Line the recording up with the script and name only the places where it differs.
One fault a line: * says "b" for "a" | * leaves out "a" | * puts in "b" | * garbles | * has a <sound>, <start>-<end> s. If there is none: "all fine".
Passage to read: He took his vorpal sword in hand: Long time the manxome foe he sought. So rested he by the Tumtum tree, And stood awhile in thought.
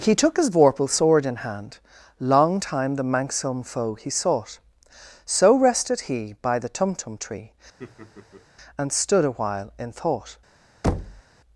* has a laugh, 7.8-8.5 s
* has a thud, 10.8-11.2 s